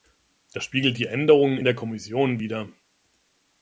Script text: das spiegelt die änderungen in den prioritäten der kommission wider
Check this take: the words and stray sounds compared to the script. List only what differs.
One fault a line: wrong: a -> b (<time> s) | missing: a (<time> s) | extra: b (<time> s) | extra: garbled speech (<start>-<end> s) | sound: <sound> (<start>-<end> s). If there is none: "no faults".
missing: in den prioritäten (1.6 s)